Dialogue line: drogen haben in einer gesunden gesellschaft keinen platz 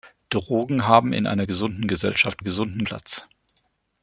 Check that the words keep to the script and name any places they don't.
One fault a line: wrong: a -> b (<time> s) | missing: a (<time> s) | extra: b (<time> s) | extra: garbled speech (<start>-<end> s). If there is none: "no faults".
wrong: keinen -> gesunden (2.4 s)